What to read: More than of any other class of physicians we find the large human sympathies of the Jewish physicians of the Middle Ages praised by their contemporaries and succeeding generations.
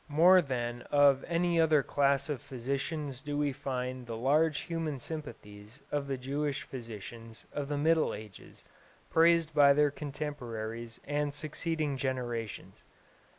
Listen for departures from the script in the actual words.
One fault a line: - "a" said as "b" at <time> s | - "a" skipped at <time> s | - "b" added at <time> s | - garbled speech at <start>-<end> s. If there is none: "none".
- "do" added at 3.2 s